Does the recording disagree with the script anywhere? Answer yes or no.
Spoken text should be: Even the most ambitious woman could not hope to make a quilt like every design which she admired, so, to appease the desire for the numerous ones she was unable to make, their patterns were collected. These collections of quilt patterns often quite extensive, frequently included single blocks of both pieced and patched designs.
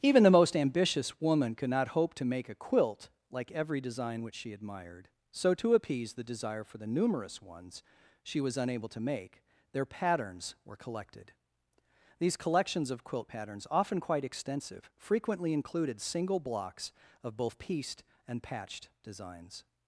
no